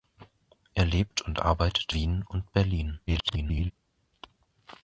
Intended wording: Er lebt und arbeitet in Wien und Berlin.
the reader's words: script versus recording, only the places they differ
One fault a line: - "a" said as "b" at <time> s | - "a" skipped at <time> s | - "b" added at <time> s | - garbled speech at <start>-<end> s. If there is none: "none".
- "in" skipped at 1.9 s
- garbled speech at 3.1-3.7 s